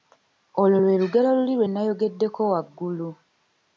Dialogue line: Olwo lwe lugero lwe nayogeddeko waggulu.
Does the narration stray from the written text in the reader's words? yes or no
yes